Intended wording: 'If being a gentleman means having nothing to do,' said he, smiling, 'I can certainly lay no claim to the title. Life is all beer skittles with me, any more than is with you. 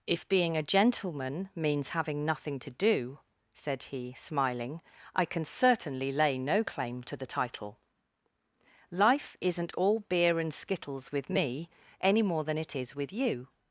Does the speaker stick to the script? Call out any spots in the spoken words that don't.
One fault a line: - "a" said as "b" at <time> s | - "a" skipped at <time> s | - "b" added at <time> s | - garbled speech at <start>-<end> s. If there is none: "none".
- "is" said as "isn't" at 9.4 s
- "and" added at 10.4 s
- "it" added at 12.6 s